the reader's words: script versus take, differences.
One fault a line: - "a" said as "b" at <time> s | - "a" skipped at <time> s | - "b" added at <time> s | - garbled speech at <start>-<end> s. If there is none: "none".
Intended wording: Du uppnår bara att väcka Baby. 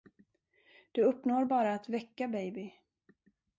none